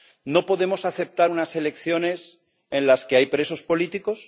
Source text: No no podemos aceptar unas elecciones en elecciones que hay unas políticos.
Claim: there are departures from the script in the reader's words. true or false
true